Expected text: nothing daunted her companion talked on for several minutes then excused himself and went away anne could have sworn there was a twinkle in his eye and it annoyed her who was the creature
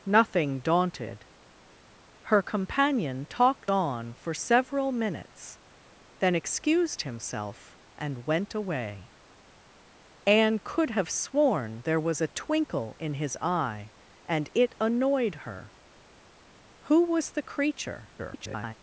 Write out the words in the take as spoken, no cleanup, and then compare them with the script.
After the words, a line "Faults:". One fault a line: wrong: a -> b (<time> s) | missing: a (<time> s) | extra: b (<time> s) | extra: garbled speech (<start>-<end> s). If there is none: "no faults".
nothing daunted her companion talked on for several minutes then excused himself and went away anne could have sworn there was a twinkle in his eye and it annoyed her who was the creature [garbled]
Faults:
extra: garbled speech (18.2-18.7 s)